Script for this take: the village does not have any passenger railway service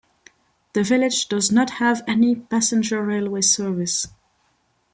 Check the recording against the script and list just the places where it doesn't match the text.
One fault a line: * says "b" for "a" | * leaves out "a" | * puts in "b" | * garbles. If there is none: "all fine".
all fine